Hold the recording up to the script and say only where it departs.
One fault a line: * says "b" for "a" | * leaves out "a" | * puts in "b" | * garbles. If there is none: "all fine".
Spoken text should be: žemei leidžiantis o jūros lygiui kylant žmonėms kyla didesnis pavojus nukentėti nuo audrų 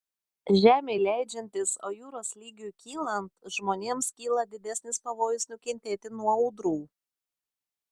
all fine